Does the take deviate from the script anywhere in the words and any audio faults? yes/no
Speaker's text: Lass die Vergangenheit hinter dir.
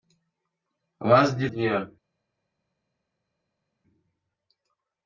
yes